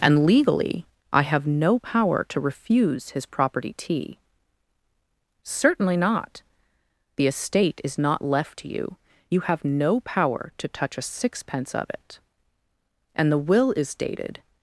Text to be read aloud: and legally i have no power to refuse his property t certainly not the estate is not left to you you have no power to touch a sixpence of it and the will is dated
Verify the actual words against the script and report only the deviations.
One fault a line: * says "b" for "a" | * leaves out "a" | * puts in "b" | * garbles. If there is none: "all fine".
all fine